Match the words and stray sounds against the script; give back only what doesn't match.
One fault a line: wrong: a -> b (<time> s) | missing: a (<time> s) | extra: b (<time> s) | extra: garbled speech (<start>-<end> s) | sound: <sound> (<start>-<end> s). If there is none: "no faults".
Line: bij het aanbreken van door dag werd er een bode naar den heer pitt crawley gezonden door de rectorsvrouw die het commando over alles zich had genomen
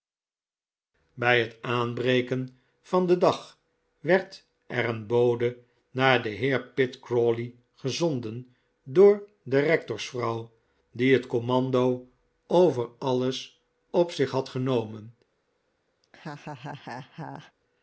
wrong: door -> den (3.1 s)
extra: op (13.9 s)
sound: laugh (16.0-17.5 s)